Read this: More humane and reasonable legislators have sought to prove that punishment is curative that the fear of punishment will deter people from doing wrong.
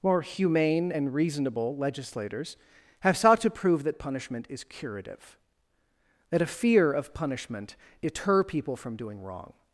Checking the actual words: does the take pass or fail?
fail